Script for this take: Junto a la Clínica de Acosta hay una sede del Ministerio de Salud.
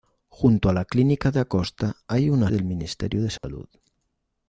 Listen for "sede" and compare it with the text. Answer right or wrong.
wrong